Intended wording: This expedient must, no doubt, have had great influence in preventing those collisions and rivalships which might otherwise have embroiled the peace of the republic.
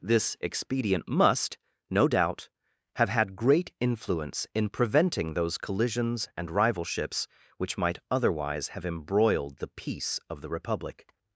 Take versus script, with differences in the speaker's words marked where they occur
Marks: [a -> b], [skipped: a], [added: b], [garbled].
This expedient must, no doubt, have had great influence in preventing those collisions and rivalships which might otherwise have embroiled the peace of the republic.